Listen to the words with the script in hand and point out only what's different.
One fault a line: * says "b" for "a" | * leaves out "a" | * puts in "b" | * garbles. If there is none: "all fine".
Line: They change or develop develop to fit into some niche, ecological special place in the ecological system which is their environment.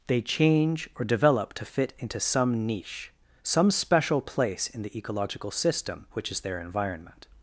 * leaves out "develop"
* says "some" for "ecological"